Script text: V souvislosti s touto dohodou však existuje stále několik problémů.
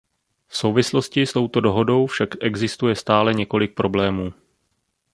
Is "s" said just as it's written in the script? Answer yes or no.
yes